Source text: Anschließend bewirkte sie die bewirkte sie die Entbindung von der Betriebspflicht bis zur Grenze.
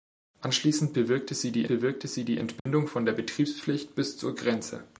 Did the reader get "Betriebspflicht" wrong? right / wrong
right